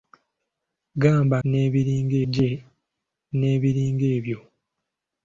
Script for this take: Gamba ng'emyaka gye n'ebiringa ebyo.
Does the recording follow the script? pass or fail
fail